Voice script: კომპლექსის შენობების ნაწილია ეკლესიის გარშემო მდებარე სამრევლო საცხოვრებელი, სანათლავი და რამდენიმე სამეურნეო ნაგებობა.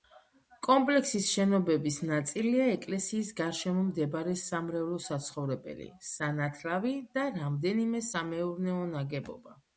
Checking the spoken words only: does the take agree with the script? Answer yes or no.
yes